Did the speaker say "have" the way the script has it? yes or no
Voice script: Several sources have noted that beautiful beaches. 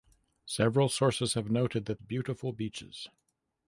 yes